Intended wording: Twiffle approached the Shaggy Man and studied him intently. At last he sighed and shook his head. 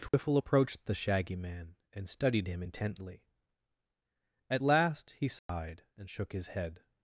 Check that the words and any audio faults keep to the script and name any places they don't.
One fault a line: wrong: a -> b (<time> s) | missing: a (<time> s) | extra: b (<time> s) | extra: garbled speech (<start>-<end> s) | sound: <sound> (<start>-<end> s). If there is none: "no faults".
sound: dropout (0.1-0.1 s)
sound: dropout (5.4-5.5 s)